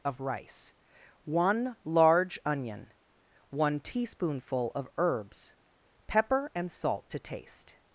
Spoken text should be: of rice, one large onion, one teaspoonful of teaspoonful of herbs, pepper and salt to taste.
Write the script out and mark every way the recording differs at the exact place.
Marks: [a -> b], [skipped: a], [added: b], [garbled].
of rice, one large onion, one teaspoonful of [skipped: teaspoonful of] herbs, pepper and salt to taste.